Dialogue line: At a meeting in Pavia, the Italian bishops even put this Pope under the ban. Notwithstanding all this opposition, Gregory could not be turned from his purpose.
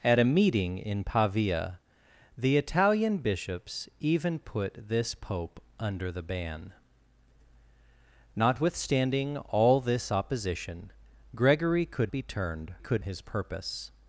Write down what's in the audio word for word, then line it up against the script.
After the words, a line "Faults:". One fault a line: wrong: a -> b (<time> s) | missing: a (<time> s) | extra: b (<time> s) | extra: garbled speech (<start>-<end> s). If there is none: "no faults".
At a meeting in Pavia, the Italian bishops even put this Pope under the ban. Notwithstanding all this opposition, Gregory could be turned could his purpose.
Faults:
missing: not (12.1 s)
wrong: from -> could (12.8 s)